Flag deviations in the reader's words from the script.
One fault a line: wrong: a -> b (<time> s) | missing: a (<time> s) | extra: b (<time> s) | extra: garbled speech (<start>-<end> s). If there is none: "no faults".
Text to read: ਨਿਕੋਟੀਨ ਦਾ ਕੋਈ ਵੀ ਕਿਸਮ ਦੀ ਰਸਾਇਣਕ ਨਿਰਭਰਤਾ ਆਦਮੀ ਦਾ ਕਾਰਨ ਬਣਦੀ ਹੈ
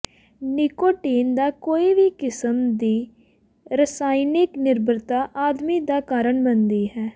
no faults